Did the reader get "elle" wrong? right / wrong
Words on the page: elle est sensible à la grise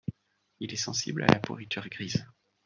wrong